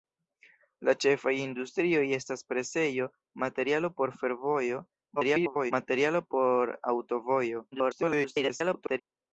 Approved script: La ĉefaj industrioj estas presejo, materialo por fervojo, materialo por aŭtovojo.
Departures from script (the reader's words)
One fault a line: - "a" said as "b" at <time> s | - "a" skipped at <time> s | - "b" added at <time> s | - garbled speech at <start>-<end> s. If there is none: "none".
- garbled speech at 5.2-5.7 s
- garbled speech at 7.7-9.0 s